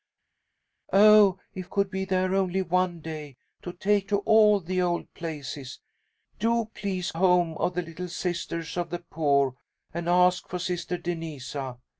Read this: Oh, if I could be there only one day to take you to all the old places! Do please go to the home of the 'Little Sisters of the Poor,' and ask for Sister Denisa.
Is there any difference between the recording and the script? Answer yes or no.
yes